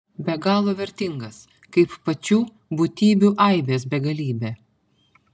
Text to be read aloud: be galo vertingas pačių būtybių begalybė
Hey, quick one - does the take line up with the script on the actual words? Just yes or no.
no